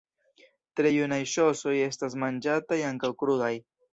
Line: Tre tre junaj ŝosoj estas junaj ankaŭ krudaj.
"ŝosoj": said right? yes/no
yes